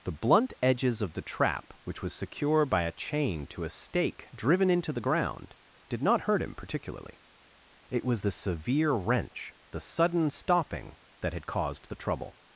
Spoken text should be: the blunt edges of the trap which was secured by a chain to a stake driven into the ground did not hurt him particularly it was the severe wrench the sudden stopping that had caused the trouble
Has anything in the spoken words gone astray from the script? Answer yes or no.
yes